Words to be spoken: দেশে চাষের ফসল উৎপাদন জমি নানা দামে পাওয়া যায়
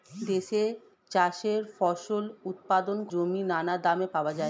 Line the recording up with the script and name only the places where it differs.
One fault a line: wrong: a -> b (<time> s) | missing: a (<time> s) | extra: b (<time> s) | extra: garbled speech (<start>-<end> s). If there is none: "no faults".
no faults